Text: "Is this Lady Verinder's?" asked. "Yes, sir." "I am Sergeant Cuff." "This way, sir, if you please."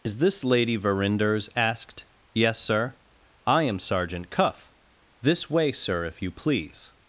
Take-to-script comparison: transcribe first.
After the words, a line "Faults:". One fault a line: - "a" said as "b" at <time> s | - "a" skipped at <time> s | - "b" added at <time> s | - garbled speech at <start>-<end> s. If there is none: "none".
"Is this Lady Verinder's?" asked. "Yes, sir." "I am Sergeant Cuff." "This way, sir, if you please."
Faults:
none